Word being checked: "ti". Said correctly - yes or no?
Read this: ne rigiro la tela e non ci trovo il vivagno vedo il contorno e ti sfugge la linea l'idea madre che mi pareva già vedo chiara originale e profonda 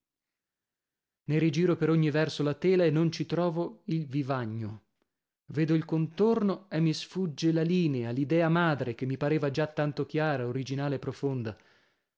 no